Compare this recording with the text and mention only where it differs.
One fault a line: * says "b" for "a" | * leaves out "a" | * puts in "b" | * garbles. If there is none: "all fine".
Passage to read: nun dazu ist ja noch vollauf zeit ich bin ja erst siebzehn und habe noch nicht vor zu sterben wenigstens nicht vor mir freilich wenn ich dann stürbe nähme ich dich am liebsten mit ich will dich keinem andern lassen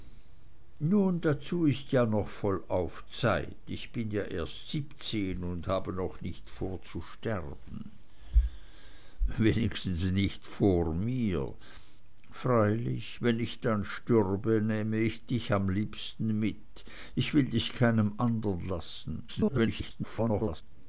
* garbles